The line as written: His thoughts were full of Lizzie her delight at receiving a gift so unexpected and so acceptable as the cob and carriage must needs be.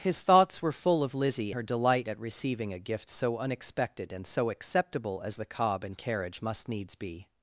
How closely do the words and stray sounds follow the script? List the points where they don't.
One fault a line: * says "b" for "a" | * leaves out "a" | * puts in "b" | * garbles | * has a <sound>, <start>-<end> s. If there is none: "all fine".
all fine